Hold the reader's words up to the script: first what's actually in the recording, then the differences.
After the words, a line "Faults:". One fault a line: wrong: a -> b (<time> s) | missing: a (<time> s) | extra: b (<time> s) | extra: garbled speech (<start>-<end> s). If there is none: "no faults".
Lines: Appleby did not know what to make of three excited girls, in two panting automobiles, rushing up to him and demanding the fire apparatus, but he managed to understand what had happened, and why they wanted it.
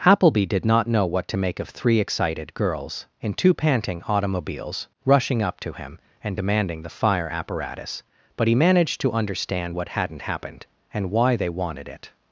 Appleby did not know what to make of three excited girls, in two panting automobiles, rushing up to him and demanding the fire apparatus, but he managed to understand what hadn't happened, and why they wanted it.
Faults:
wrong: had -> hadn't (9.9 s)